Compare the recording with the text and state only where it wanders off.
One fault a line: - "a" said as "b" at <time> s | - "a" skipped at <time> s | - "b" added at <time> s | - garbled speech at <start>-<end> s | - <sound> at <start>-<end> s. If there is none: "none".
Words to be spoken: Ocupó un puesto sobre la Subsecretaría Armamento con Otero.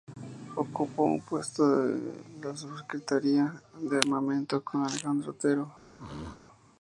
- "sobre" said as "en" at 1.8 s
- "de" added at 3.8 s
- "Alejandro" added at 4.9 s
- throat clearing at 6.0-6.4 s